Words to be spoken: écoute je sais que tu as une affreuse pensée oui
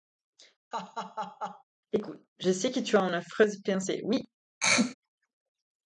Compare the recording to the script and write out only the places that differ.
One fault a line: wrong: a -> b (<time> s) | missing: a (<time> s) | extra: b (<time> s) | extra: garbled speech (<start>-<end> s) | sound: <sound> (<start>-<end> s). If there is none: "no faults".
sound: laugh (0.7-1.6 s)
sound: throat clearing (4.6-4.9 s)